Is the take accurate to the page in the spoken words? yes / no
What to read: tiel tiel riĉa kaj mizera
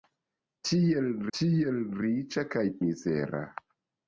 yes